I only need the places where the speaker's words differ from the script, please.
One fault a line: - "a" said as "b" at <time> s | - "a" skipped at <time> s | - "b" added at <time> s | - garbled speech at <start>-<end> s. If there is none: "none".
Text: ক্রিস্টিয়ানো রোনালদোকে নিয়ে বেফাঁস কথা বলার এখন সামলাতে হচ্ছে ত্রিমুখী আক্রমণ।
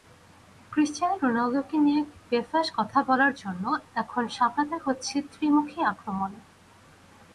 - "জন্য" added at 3.3 s